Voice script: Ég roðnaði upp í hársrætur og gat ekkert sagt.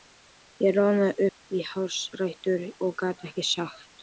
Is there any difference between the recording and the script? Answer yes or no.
no